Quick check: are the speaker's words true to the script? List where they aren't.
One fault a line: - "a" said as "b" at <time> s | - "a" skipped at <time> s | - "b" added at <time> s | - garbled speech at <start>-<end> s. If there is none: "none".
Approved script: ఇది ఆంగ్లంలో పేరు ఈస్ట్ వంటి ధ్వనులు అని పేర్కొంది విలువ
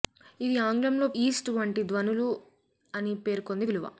- "పేరు" skipped at 1.1 s